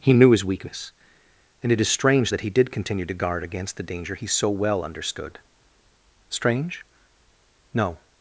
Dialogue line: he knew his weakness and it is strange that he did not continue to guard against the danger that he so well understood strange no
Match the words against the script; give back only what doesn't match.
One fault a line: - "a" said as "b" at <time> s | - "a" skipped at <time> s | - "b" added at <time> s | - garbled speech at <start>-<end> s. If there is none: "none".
- "not" skipped at 2.7 s
- "that" skipped at 4.1 s